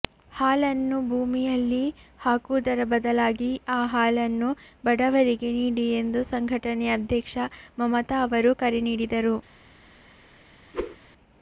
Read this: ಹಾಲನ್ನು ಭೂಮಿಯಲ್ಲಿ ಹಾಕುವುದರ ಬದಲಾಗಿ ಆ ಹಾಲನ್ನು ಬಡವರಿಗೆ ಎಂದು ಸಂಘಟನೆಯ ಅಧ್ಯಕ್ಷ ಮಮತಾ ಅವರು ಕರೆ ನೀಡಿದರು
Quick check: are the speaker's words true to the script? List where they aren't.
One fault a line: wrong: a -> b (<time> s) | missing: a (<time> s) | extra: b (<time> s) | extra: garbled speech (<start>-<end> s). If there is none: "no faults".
extra: ನೀಡಿ (5.6 s)